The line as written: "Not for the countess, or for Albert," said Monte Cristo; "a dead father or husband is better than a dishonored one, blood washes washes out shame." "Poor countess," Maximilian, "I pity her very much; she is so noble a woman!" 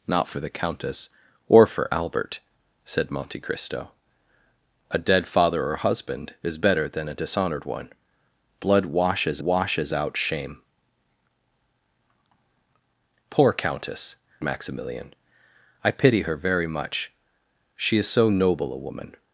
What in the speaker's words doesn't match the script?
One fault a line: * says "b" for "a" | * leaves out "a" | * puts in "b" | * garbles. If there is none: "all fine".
all fine